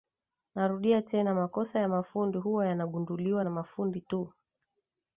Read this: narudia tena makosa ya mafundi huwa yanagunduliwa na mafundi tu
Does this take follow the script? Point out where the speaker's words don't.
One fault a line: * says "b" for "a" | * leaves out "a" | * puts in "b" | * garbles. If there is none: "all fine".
all fine